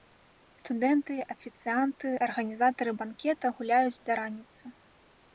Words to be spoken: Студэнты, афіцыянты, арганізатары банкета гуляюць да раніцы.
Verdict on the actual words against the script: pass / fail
pass